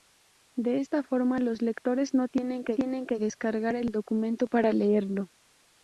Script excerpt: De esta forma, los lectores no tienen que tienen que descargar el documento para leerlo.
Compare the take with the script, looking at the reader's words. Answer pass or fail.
pass